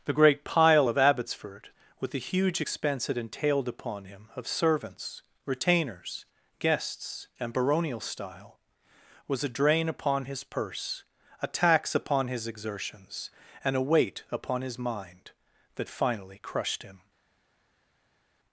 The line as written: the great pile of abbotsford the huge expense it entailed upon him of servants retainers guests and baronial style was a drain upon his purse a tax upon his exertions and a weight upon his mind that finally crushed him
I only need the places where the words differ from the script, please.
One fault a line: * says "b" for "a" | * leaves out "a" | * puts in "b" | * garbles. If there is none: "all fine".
* puts in "with"